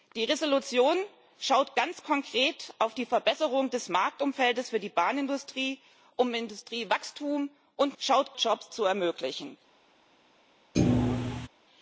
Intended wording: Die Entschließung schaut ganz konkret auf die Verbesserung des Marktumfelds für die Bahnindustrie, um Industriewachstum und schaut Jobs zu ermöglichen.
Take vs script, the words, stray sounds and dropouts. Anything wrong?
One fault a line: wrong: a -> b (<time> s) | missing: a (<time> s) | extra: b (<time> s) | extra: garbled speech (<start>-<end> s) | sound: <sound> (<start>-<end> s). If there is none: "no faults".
sound: thud (10.7-11.5 s)